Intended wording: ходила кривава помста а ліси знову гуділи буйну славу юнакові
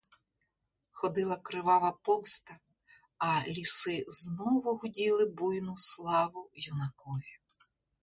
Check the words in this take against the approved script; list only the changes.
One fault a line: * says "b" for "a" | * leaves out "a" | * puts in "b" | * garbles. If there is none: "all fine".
all fine